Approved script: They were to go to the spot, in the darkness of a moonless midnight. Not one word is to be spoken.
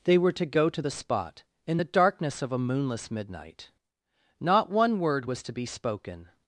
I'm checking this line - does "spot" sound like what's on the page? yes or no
yes